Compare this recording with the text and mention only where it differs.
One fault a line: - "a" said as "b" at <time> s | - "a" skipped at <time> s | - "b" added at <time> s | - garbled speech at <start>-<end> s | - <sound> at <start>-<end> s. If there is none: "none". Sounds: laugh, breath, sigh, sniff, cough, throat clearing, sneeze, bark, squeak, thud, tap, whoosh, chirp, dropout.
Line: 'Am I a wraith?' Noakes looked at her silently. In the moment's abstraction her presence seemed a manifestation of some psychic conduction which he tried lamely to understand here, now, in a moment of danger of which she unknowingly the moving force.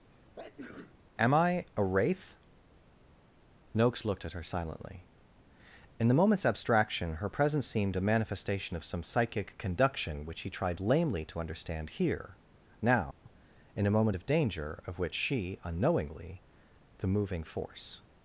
- sneeze at 0.1-1.0 s
- dropout at 13.1-13.3 s